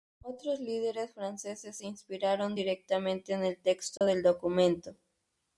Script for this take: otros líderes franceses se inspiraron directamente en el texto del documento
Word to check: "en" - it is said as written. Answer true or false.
true